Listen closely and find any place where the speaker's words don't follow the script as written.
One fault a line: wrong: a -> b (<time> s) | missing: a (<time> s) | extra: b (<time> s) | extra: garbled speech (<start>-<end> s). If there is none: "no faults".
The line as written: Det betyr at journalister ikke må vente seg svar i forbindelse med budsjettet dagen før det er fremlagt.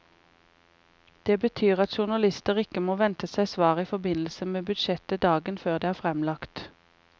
no faults